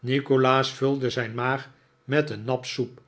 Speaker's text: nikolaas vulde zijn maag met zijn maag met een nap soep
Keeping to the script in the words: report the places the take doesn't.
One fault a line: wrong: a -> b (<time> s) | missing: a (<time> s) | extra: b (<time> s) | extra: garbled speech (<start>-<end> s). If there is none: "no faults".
missing: zijn maag met (2.3 s)